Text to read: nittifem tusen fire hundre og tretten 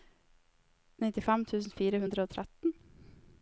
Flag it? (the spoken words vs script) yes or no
no